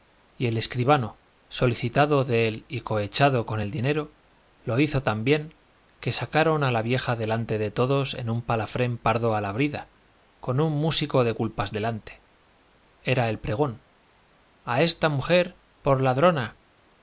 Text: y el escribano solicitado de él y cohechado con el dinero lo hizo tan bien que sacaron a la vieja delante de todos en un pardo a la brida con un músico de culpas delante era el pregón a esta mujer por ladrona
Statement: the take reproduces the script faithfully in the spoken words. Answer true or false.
false